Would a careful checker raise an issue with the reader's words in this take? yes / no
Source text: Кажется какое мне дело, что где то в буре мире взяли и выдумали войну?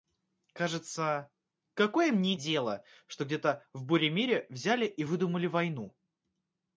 no